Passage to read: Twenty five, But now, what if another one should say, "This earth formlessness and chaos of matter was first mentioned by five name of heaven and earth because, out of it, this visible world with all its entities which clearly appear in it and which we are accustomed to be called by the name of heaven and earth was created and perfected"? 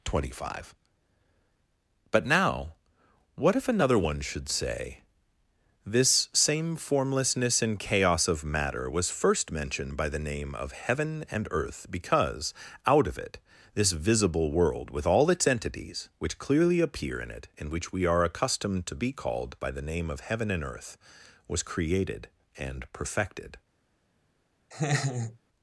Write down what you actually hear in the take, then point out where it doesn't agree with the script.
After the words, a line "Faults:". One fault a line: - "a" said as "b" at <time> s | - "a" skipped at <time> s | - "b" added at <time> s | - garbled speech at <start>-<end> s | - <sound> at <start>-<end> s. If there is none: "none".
Twenty five, But now, what if another one should say, "This same formlessness and chaos of matter was first mentioned by the name of heaven and earth because, out of it, this visible world with all its entities which clearly appear in it and which we are accustomed to be called by the name of heaven and earth was created and perfected"?
Faults:
- "earth" said as "same" at 6.3 s
- "five" said as "the" at 10.1 s
- laugh at 24.7-25.4 s